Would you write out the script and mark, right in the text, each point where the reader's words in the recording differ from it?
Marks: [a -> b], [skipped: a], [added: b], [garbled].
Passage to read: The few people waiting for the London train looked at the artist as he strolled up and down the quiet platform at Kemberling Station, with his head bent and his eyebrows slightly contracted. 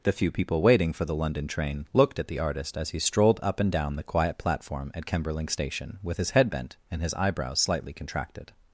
The few people waiting for the London train looked at the artist as he strolled up and down the quiet platform at Kemberling Station, with his head bent and his eyebrows slightly contracted.